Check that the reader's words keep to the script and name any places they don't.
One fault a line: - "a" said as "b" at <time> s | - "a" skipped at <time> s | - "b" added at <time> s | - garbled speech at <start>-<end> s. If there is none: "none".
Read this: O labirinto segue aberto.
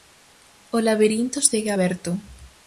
none